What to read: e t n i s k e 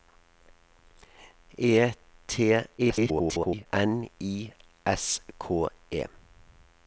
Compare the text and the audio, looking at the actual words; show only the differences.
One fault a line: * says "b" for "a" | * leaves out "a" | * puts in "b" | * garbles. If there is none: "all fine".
* garbles